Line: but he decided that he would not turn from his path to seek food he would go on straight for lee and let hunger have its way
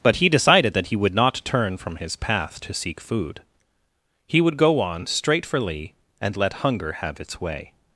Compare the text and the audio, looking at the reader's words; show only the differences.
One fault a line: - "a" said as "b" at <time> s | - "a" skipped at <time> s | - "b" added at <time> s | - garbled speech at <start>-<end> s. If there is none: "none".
none